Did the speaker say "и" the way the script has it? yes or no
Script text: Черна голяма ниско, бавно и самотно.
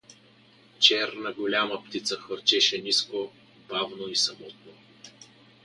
yes